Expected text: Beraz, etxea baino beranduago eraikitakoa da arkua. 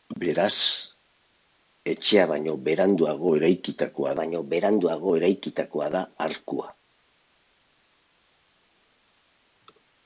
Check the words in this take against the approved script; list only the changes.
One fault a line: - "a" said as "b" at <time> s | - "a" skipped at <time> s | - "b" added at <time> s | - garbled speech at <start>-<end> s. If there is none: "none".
- "baino beranduago eraikitakoa" added at 4.2 s